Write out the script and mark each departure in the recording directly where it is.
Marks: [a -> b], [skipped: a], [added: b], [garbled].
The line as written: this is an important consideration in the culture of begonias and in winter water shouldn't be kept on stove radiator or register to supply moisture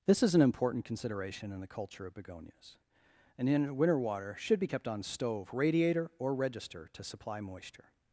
this is an important consideration in the culture of begonias and in winter water [shouldn't -> should] be kept on stove radiator or register to supply moisture